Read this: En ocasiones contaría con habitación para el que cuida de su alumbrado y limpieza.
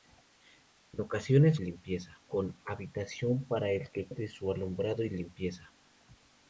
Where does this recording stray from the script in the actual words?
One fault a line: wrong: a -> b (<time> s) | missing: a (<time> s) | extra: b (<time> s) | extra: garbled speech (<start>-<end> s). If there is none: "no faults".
wrong: contaría -> limpieza (1.6 s)
missing: cuida (4.1 s)